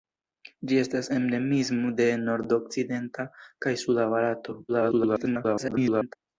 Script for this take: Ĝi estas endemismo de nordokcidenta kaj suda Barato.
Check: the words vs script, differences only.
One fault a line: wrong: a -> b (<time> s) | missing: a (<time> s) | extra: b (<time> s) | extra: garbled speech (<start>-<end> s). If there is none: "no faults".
extra: garbled speech (4.7-6.2 s)